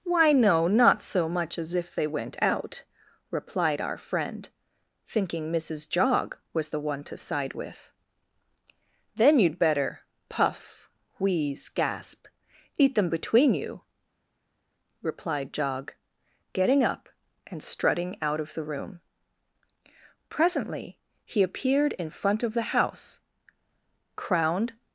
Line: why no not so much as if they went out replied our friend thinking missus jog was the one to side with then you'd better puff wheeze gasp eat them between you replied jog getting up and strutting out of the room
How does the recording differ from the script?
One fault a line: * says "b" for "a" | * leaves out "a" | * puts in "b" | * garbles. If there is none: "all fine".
* puts in "presently he appeared in front of the house crowned"